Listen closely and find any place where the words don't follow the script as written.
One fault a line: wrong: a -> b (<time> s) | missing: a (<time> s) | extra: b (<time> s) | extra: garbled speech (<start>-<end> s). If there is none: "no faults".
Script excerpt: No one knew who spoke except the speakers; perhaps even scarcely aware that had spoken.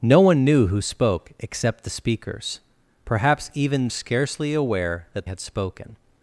no faults